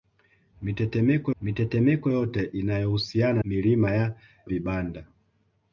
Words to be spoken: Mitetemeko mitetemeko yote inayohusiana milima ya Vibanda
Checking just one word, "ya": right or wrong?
right